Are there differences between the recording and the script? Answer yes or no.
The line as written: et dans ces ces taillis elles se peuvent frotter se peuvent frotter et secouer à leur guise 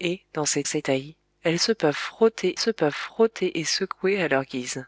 no